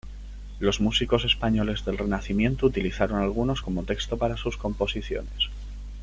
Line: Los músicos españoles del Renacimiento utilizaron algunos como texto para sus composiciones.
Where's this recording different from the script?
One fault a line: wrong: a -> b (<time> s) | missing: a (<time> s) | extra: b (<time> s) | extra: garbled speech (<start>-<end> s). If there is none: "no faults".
no faults